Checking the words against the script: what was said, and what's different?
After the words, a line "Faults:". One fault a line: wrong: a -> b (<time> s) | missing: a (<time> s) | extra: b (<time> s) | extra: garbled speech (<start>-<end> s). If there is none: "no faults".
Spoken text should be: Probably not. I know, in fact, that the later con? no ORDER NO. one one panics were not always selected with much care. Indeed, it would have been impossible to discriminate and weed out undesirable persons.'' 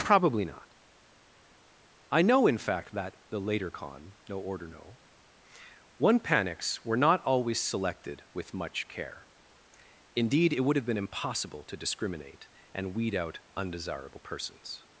Probably not. I know, in fact, that the later con? no ORDER NO. one panics were not always selected with much care. Indeed, it would have been impossible to discriminate and weed out undesirable persons.''
Faults:
missing: one (6.2 s)